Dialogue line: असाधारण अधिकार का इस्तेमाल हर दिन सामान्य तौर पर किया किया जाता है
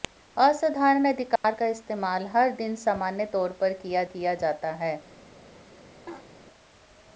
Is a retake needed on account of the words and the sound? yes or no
yes